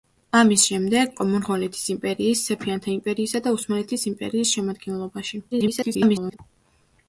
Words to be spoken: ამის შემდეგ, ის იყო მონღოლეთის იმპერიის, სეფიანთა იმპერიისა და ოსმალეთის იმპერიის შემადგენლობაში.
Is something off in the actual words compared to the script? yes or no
yes